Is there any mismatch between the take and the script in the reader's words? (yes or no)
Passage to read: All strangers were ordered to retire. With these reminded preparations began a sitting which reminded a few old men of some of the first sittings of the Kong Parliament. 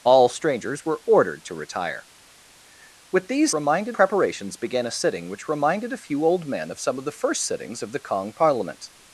no